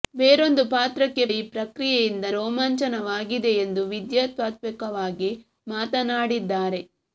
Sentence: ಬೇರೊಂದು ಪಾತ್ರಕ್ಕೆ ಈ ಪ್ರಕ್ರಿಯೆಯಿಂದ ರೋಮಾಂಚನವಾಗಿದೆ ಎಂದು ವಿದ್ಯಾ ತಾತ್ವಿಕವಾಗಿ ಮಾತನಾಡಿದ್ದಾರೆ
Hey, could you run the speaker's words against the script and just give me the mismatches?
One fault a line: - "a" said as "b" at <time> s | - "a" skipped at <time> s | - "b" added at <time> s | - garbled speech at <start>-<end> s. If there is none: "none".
none